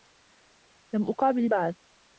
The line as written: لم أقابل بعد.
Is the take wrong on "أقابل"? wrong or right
right